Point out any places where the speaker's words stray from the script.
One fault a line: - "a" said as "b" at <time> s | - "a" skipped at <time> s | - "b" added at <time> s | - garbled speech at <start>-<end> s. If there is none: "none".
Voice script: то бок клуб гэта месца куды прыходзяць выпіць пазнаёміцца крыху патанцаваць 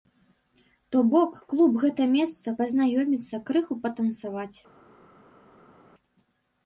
- "куды прыходзяць выпіць" skipped at 2.5 s